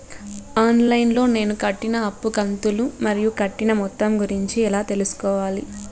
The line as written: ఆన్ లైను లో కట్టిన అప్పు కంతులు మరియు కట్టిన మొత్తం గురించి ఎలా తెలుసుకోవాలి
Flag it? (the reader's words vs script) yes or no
yes